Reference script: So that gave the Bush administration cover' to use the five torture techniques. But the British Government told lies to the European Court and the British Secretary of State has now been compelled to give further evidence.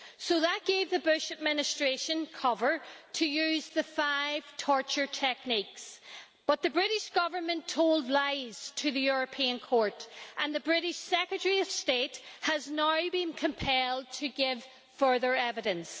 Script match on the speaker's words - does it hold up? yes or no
yes